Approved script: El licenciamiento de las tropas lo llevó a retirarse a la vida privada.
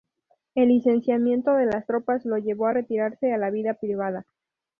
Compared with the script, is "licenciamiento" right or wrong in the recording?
right